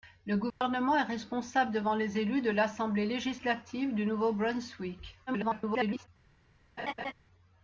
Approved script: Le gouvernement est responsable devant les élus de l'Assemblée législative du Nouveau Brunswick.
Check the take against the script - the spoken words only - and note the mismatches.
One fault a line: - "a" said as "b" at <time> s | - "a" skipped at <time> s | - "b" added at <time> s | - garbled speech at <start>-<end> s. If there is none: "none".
- garbled speech at 5.3-6.1 s